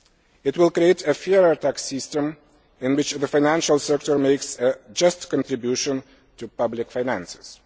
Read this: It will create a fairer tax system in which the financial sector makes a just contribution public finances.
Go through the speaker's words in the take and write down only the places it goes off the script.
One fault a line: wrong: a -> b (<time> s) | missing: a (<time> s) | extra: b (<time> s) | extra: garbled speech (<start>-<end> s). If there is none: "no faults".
extra: to (6.4 s)